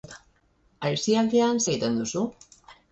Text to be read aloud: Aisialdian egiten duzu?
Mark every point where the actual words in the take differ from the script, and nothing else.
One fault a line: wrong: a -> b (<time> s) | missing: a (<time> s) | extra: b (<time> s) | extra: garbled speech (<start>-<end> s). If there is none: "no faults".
no faults